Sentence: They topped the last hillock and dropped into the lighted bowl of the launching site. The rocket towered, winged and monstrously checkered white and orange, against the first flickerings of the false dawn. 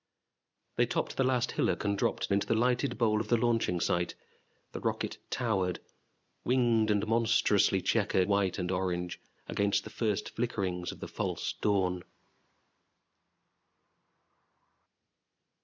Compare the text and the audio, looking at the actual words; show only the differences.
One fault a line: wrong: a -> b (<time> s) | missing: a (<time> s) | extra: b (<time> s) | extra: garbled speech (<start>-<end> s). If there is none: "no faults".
no faults